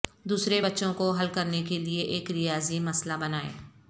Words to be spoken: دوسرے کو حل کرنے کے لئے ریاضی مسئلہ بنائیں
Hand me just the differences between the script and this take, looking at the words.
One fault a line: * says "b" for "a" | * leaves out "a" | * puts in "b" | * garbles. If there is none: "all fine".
* puts in "بچوں"
* puts in "ایک"